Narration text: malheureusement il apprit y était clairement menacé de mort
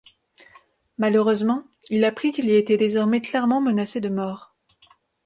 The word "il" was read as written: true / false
true